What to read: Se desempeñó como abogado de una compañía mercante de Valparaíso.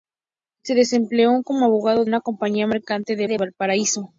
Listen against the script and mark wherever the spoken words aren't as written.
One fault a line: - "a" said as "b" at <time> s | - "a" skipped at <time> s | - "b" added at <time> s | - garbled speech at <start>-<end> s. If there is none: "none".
- "de" skipped at 2.0 s
- "de" added at 3.3 s